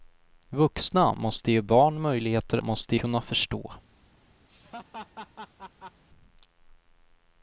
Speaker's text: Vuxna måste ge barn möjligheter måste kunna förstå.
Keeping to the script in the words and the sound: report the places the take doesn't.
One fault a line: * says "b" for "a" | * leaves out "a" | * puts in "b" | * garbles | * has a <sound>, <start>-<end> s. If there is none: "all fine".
* has a laugh, 4.5-6.0 s